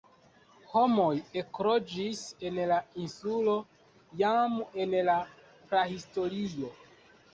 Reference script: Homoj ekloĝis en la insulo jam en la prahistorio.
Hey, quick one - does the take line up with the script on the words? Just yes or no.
yes